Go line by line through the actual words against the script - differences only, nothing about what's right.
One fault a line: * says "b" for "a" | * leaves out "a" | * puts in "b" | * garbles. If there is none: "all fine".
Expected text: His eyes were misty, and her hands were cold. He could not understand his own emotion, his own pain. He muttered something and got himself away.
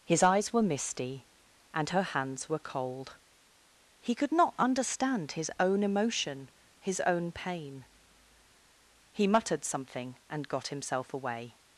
all fine